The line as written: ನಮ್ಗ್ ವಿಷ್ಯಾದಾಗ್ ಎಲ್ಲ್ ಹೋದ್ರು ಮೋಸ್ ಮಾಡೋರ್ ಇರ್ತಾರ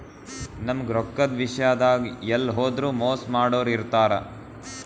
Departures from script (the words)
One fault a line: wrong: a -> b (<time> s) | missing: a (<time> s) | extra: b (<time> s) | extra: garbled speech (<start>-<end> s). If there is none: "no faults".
extra: ರೊಕ್ಕದ್ (0.9 s)